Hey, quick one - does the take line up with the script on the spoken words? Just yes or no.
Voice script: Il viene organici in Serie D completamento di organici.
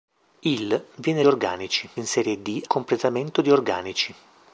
yes